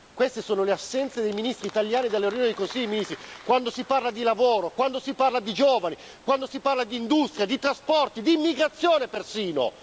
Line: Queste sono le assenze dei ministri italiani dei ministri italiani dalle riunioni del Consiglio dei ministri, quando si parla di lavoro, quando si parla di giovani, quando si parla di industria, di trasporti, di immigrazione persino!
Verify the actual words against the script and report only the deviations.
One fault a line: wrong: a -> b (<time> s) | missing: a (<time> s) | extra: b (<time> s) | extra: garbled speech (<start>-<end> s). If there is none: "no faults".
missing: dei ministri italiani (2.1 s)